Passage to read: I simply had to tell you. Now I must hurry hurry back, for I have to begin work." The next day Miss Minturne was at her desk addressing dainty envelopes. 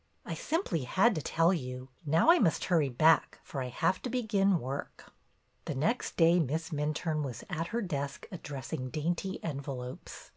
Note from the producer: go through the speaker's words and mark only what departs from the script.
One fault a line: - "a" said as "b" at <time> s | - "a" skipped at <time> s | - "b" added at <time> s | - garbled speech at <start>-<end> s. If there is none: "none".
- "hurry" skipped at 2.9 s